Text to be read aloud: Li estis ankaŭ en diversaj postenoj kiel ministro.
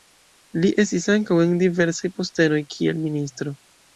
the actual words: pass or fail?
pass